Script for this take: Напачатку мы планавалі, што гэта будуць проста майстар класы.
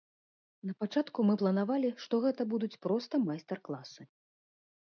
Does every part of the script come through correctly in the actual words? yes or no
yes